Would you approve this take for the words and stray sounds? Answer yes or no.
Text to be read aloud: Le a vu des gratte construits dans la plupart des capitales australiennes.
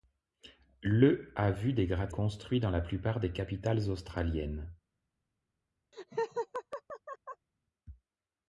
no